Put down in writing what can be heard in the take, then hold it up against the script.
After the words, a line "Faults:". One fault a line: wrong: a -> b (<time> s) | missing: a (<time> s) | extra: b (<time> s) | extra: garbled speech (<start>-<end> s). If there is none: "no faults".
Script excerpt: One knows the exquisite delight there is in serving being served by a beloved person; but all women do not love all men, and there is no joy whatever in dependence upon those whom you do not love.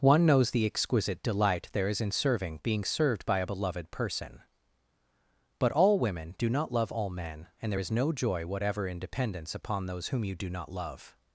One knows the exquisite delight there is in serving being served by a beloved person; but all women do not love all men, and there is no joy whatever in dependence upon those whom you do not love.
Faults:
no faults